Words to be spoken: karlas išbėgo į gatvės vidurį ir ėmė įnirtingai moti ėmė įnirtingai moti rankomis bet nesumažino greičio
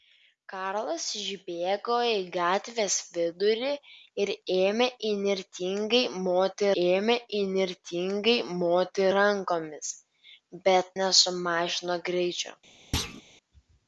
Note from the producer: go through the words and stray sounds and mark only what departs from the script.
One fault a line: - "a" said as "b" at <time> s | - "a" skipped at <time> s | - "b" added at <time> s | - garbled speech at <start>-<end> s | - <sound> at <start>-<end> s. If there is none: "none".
- thud at 12.9-13.2 s